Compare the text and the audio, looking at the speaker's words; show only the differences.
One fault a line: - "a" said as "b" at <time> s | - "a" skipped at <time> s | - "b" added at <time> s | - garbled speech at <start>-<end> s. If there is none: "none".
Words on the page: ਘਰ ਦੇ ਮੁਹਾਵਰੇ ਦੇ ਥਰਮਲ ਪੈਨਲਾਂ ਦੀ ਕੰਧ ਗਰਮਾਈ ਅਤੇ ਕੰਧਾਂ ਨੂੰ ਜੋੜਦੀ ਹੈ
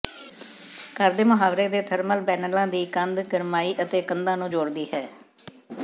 none